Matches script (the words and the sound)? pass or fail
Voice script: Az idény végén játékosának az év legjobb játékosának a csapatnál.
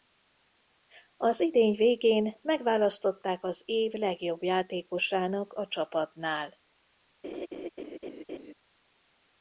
fail